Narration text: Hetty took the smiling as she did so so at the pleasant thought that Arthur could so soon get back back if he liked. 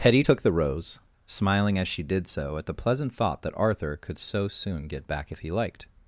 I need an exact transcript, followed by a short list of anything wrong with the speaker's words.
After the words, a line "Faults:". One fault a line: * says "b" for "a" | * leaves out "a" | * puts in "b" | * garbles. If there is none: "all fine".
Hetty took the rose, smiling as she did so at the pleasant thought that Arthur could so soon get back if he liked.
Faults:
* puts in "rose"
* leaves out "so"
* leaves out "back"